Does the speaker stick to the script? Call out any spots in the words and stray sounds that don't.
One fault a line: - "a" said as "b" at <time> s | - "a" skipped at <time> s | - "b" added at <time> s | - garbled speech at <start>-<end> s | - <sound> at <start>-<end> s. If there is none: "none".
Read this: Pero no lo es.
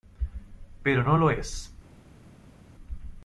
none